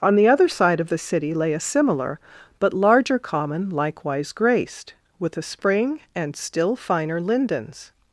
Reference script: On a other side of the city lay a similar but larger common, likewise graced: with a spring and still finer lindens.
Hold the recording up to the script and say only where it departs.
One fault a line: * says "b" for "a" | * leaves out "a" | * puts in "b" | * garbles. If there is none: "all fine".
* says "the" for "a"